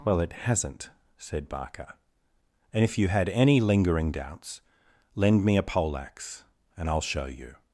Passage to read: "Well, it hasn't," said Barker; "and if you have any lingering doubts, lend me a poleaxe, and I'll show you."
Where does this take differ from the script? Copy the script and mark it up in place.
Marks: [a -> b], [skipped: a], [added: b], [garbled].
"Well, it hasn't," said Barker; "and if you [have -> had] any lingering doubts, lend me a poleaxe, and I'll show you."